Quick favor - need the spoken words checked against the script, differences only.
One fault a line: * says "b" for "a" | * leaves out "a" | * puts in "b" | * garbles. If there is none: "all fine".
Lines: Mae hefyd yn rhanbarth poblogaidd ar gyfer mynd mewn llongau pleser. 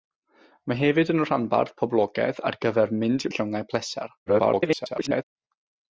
* leaves out "mewn"
* garbles